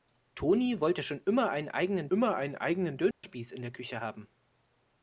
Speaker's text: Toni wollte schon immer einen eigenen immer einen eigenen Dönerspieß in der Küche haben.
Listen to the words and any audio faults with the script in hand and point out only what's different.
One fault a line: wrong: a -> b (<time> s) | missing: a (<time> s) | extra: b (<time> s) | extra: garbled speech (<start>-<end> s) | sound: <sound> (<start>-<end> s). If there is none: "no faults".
sound: dropout (3.1-3.2 s)